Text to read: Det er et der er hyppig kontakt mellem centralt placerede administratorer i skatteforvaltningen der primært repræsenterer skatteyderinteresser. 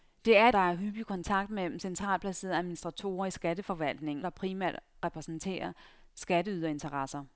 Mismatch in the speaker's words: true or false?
false